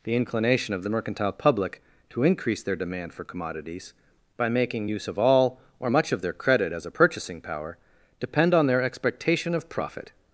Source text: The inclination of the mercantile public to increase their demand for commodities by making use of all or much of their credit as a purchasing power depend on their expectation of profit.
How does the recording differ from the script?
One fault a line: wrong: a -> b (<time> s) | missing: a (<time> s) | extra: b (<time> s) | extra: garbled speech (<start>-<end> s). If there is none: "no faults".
no faults